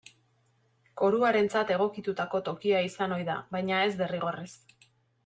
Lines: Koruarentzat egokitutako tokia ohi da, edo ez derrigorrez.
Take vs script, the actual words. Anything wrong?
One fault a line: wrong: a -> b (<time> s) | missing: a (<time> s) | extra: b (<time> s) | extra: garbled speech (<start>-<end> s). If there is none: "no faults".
extra: izan (2.9 s)
wrong: edo -> baina (3.6 s)